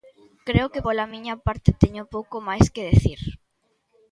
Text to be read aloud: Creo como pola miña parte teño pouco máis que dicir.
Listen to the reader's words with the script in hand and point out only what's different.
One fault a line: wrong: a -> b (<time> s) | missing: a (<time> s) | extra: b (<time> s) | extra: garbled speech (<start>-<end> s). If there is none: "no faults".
wrong: como -> que (0.7 s)